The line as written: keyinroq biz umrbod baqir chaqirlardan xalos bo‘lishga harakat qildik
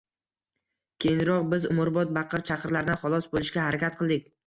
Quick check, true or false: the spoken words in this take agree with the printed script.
true